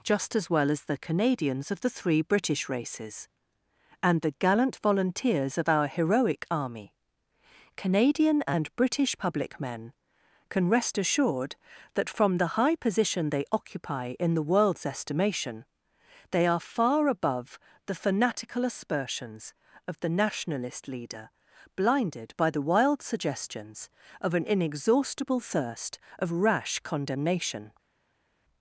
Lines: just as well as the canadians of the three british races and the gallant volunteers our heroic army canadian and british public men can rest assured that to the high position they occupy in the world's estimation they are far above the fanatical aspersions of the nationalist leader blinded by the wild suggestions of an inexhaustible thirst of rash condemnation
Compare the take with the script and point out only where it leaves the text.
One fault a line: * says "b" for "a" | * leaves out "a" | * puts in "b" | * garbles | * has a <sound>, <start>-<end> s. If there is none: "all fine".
* puts in "of"
* says "from" for "to"